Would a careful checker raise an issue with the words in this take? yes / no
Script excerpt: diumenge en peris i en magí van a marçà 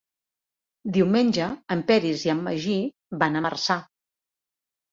no